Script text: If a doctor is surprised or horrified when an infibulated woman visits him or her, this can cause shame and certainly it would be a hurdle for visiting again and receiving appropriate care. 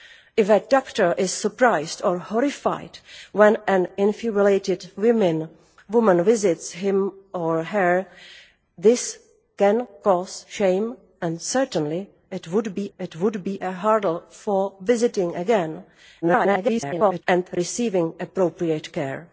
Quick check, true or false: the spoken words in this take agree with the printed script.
false